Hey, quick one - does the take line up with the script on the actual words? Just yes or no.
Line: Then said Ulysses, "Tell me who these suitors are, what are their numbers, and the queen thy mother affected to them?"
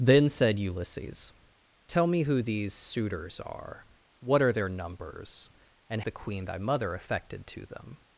yes